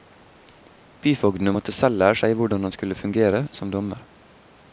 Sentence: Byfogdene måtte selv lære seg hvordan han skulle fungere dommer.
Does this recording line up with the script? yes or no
no